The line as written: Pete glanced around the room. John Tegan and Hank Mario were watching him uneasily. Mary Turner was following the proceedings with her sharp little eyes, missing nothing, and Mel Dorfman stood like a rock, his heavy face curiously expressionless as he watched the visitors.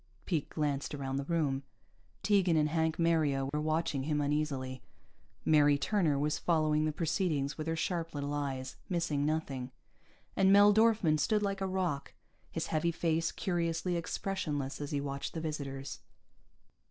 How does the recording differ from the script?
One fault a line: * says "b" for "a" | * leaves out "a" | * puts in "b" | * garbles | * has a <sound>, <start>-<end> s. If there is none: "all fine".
* leaves out "John"
* has a dropout, 3.5-3.5 s